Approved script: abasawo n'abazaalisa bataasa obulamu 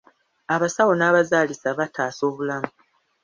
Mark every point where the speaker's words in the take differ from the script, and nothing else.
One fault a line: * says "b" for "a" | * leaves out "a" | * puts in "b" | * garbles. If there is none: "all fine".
all fine